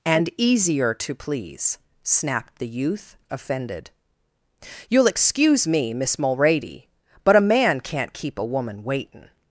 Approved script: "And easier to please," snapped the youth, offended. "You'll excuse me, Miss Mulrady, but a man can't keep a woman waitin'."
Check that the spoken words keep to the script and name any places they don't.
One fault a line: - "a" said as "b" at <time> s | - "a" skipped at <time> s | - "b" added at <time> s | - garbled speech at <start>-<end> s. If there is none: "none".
none